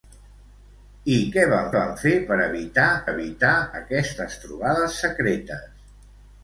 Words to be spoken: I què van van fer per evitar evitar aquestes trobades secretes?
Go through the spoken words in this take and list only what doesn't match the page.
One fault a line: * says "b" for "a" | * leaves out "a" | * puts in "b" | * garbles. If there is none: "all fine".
all fine